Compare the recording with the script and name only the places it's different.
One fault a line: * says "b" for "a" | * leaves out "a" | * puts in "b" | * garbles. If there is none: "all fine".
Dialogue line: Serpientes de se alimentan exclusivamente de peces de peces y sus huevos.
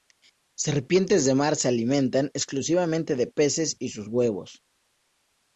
* puts in "mar"
* leaves out "de peces"